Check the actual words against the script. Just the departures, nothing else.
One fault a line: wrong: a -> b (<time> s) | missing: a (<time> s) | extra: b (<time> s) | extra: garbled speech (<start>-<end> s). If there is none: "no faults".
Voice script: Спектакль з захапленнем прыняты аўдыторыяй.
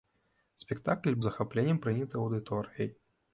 no faults